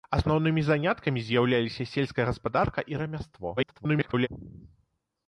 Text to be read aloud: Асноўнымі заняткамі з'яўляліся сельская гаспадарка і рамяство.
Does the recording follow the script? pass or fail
fail